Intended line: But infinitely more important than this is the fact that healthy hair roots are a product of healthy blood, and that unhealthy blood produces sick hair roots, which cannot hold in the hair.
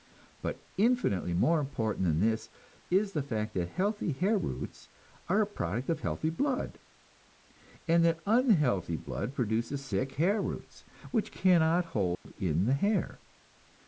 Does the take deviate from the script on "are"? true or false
false